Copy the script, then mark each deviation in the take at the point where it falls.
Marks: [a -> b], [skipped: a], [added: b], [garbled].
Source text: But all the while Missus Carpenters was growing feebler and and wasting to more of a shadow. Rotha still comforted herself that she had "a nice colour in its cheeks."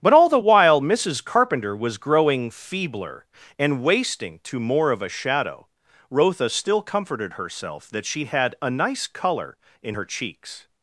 But all the while Missus [Carpenters -> Carpenter] was growing feebler and [skipped: and] wasting to more of a shadow. Rotha still comforted herself that she had "a nice colour in [its -> her] cheeks."